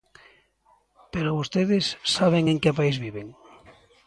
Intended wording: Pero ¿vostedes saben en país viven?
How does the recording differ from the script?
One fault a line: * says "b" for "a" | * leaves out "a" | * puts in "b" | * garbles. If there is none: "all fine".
* puts in "que"